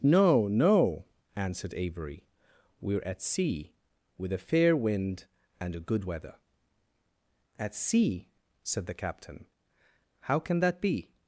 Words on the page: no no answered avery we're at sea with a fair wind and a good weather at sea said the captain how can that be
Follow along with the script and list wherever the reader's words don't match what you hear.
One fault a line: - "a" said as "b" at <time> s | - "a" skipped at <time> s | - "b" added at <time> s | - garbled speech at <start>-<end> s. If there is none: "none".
none